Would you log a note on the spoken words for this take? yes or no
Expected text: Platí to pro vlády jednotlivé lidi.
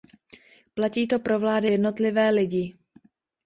no